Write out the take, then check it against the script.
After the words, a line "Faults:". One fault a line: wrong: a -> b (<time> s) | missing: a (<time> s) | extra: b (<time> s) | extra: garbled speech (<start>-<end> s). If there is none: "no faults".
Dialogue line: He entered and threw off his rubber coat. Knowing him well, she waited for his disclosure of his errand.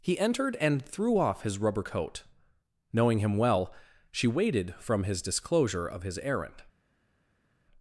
He entered and threw off his rubber coat. Knowing him well, she waited from his disclosure of his errand.
Faults:
wrong: for -> from (4.7 s)